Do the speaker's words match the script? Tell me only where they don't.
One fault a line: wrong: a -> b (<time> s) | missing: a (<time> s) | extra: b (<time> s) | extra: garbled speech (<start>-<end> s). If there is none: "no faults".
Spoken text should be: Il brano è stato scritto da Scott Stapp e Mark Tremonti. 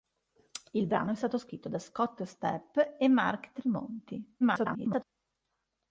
extra: garbled speech (4.4-5.0 s)